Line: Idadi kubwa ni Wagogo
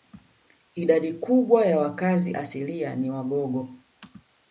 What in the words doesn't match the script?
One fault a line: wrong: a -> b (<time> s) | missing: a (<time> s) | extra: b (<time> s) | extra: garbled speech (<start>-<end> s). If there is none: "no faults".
extra: ya wakazi asilia (1.6 s)